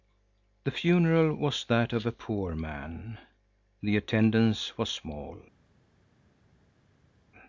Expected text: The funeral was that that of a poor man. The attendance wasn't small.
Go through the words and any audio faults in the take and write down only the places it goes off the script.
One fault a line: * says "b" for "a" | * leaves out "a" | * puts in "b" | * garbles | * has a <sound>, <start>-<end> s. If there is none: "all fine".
* leaves out "that"
* says "was" for "wasn't"